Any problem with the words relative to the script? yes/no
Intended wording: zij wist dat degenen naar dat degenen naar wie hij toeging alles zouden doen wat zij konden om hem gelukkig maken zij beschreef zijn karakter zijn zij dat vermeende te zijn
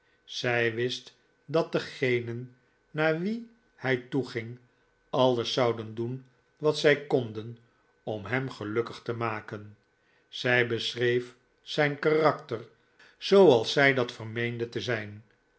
yes